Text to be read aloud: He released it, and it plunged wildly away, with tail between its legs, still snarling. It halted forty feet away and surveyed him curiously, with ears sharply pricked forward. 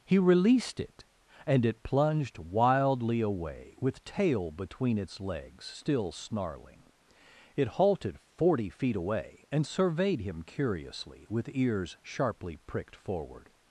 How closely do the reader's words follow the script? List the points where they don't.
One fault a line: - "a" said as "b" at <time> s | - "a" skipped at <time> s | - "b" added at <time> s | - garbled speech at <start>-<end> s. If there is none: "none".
none